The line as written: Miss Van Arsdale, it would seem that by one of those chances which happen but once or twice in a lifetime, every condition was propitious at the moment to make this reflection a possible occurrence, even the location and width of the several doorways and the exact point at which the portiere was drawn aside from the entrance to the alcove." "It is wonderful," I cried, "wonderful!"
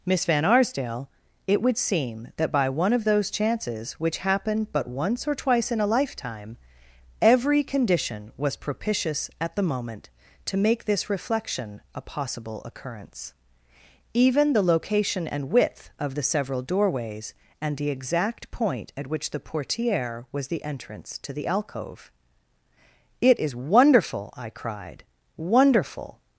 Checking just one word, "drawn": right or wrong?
wrong